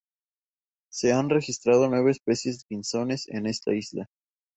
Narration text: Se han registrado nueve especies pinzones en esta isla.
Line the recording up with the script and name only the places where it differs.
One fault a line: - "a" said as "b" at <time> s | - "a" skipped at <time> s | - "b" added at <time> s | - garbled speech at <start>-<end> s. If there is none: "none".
none